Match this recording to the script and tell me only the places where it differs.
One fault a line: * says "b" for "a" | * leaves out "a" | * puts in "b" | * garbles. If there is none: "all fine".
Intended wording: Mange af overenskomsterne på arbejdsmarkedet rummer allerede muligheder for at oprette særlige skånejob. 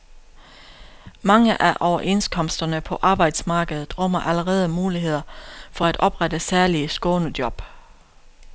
all fine